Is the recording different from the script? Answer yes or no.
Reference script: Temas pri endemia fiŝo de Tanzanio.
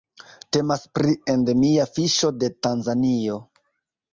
no